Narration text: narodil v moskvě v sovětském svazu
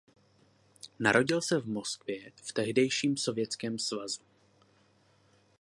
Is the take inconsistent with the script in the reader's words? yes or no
yes